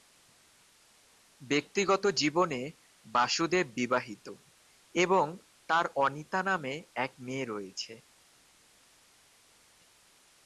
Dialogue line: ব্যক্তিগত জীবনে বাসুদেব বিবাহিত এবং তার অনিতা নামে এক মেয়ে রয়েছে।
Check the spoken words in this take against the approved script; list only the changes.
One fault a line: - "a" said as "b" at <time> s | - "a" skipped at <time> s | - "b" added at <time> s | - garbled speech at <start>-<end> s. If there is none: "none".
none